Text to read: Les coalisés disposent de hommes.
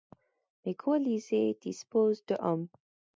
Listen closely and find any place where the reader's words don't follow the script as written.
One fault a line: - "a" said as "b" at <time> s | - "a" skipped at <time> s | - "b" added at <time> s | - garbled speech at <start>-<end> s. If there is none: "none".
none